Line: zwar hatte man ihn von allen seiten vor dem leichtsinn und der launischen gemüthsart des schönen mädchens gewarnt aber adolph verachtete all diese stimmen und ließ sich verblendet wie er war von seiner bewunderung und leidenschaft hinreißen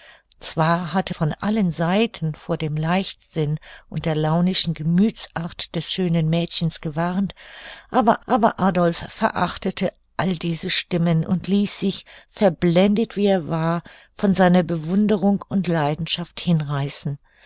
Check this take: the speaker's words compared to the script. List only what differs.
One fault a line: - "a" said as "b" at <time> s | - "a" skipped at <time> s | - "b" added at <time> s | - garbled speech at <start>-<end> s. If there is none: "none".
- "man ihn" skipped at 1.1 s
- "aber" added at 8.3 s